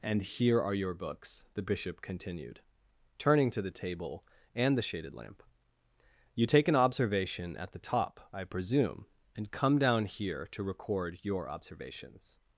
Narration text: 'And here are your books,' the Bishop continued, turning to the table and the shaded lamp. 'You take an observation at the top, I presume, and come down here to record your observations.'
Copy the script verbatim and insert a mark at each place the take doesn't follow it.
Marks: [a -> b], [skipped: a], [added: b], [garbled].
'And here are your books,' the Bishop continued, turning to the table and the shaded lamp. 'You take an observation at the top, I presume, and come down here to record your observations.'